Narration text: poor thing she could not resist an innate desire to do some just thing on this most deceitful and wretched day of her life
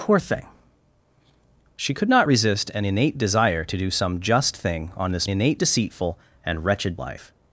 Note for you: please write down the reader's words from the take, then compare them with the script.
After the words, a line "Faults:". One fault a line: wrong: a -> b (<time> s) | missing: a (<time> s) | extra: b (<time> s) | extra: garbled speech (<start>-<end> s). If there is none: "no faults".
poor thing she could not resist an innate desire to do some just thing on this innate deceitful and wretched life
Faults:
wrong: most -> innate (5.3 s)
missing: day of her (7.0 s)